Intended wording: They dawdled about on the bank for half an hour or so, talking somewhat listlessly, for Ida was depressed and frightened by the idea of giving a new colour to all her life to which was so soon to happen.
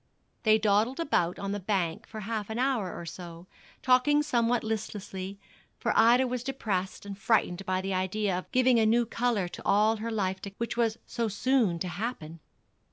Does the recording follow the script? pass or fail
pass